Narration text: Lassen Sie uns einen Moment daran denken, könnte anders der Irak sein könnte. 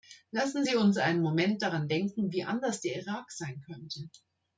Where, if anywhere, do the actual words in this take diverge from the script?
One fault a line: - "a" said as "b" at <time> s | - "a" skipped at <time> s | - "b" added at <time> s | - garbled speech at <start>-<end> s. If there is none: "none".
- "könnte" said as "wie" at 2.3 s